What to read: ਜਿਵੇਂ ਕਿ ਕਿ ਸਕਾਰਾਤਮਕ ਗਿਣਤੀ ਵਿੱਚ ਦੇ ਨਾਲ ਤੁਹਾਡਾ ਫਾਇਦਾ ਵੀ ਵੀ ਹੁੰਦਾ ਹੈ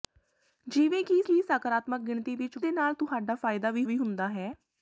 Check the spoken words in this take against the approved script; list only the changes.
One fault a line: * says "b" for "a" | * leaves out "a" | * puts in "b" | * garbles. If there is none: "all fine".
all fine